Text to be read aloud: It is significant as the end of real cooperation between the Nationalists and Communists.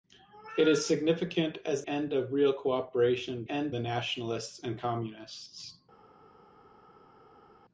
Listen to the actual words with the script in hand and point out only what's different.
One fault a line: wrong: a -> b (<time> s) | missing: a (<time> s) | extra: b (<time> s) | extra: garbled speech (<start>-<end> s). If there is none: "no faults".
missing: the (1.9 s)
wrong: between -> end (3.5 s)